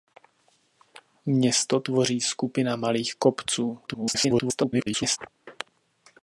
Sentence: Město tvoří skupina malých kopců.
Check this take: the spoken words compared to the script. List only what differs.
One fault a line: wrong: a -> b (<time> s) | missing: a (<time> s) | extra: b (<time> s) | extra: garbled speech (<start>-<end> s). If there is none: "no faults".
extra: garbled speech (3.9-5.2 s)